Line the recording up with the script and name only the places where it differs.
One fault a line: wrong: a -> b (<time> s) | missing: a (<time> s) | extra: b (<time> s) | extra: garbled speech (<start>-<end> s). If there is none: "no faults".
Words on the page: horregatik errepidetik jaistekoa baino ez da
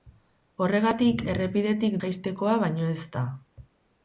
no faults